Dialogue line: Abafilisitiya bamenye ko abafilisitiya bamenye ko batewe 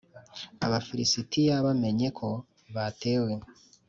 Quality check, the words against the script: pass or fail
fail